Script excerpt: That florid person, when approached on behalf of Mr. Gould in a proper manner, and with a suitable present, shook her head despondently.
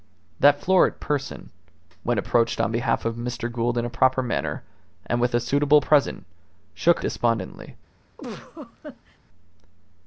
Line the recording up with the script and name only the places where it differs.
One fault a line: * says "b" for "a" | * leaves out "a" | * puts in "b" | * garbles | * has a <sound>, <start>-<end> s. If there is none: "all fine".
* leaves out "her head"
* has a laugh, 8.2-9.2 s